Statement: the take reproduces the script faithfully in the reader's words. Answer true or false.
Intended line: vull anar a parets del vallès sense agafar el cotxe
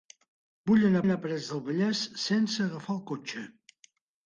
false